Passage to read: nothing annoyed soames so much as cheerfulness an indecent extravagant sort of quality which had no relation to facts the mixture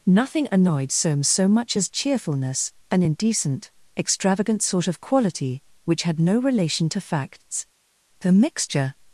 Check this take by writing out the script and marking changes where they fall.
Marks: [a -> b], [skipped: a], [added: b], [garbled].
nothing annoyed soames so much as cheerfulness an indecent extravagant sort of quality which had no relation to facts the mixture